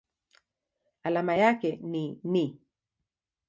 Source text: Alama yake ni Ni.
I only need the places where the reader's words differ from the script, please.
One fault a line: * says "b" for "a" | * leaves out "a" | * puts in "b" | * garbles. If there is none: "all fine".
all fine